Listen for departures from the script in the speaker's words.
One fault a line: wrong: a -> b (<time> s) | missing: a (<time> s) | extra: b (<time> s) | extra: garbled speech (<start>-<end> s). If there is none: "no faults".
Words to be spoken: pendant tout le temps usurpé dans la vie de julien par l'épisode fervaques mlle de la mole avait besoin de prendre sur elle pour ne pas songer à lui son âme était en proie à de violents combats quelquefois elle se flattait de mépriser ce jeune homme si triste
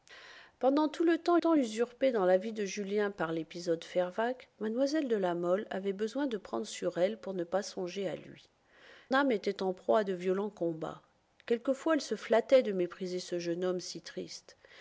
extra: temps (1.4 s)
missing: son (8.5 s)